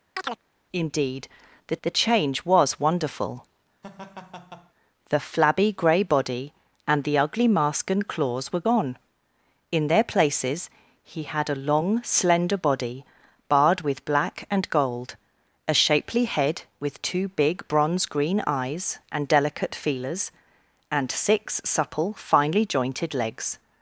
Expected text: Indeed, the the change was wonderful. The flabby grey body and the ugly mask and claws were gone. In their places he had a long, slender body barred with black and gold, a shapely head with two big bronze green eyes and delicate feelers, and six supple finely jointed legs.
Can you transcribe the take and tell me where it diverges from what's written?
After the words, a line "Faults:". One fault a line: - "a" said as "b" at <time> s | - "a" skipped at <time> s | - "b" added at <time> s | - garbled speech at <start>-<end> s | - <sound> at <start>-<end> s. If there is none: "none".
Indeed, the the change was wonderful. The flabby grey body and the ugly mask and claws were gone. In their places he had a long, slender body barred with black and gold, a shapely head with two big bronze green eyes and delicate feelers, and six supple finely jointed legs.
Faults:
- chirp at 0.2-0.4 s
- laugh at 3.8-4.7 s